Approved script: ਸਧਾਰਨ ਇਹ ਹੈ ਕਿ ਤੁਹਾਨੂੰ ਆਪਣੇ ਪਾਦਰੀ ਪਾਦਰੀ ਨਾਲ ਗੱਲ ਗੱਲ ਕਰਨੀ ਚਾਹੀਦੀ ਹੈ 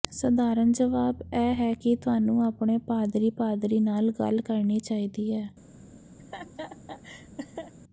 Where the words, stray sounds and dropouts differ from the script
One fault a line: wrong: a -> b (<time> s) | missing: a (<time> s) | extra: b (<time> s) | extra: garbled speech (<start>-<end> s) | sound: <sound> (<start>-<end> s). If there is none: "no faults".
extra: ਜਵਾਬ (0.7 s)
missing: ਗੱਲ (4.4 s)
sound: laugh (6.2-7.7 s)